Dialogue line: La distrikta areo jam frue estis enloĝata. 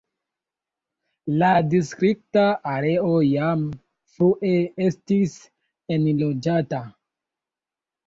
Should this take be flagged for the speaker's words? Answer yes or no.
no